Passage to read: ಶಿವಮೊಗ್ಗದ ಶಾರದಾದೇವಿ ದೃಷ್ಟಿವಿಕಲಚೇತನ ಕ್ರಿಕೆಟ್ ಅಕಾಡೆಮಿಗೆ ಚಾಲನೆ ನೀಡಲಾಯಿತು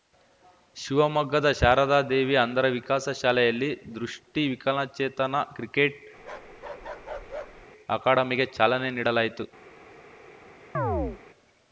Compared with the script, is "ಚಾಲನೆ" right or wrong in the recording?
right